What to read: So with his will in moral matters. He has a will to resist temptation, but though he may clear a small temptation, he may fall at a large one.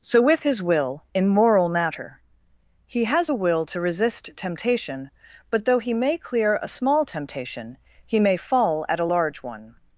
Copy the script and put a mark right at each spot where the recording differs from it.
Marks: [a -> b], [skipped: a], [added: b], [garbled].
So with his will in moral [matters. -> matter] He has a will to resist temptation, but though he may clear a small temptation, he may fall at a large one.